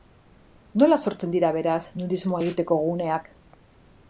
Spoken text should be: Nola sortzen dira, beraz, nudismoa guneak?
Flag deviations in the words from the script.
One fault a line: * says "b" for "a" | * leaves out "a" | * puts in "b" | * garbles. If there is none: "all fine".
* puts in "egiteko"